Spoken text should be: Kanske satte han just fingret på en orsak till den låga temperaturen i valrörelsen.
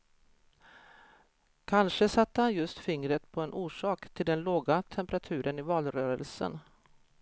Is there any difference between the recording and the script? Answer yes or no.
no